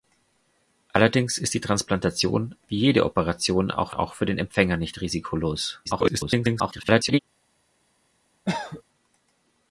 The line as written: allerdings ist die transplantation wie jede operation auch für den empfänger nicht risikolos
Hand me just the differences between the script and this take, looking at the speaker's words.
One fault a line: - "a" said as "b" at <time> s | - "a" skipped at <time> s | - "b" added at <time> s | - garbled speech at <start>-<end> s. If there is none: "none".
- "auch" added at 3.9 s
- garbled speech at 5.8-7.2 s